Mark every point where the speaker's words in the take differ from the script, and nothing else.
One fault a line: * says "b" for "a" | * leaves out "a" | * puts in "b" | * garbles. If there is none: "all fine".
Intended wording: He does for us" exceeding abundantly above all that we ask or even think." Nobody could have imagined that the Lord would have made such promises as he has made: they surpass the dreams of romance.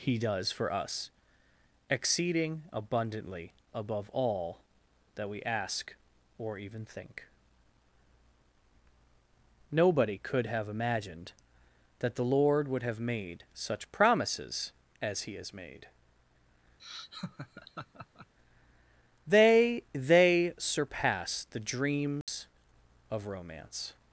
* puts in "they"